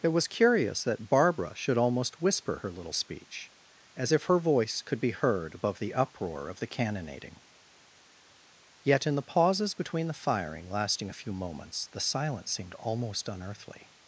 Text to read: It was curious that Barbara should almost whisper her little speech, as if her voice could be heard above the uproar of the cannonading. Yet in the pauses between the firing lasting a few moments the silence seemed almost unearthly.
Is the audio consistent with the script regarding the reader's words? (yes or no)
yes